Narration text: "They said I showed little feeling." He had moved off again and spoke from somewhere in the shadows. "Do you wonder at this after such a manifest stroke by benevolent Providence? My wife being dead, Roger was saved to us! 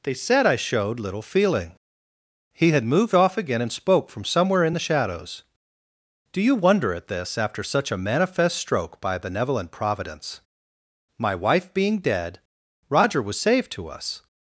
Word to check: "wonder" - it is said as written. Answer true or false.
true